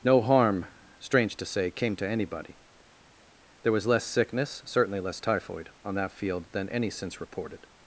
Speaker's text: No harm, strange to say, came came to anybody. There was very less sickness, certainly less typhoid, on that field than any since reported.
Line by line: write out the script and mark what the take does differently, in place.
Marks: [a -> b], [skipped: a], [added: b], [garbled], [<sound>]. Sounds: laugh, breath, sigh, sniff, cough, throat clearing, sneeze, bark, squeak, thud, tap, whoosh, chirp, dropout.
No harm, strange to say, came [skipped: came] to anybody. There was [skipped: very] less sickness, certainly less typhoid, on that field than any since reported.